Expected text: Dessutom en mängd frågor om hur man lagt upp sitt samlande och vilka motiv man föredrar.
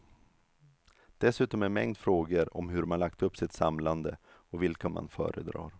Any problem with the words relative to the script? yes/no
yes